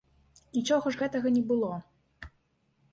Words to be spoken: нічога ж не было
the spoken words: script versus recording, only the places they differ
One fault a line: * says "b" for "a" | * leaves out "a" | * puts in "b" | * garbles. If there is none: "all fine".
* puts in "гэтага"